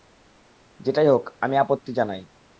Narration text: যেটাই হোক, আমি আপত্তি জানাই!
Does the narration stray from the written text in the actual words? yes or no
no